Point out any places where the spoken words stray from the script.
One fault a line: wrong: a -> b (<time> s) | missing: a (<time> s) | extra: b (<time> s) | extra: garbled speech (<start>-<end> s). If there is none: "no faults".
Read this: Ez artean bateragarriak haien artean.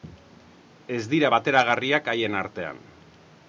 wrong: artean -> dira (1.1 s)